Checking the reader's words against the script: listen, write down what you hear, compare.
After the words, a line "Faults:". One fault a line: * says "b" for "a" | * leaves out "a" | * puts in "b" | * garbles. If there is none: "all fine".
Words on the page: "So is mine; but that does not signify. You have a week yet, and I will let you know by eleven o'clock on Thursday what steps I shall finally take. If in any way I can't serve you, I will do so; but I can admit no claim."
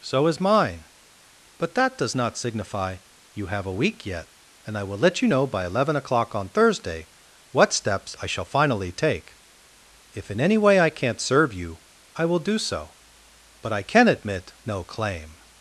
"So is mine; but that does not signify. You have a week yet, and I will let you know by eleven o'clock on Thursday what steps I shall finally take. If in any way I can't serve you, I will do so; but I can admit no claim."
Faults:
all fine